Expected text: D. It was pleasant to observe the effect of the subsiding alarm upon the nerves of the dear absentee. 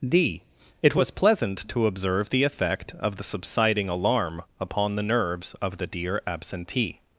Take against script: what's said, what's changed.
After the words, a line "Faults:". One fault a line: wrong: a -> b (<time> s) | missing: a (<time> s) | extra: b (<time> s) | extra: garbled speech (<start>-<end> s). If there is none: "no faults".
D. It was pleasant to observe the effect of the subsiding alarm upon the nerves of the dear absentee.
Faults:
no faults